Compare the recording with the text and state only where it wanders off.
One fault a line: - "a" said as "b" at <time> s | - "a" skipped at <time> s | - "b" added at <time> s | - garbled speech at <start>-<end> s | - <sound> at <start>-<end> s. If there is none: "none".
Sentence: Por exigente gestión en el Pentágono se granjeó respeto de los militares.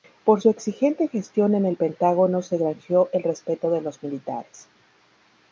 - "su" added at 0.4 s
- "el" added at 3.1 s